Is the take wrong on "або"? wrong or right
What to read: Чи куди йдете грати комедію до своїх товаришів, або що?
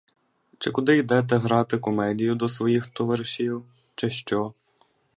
wrong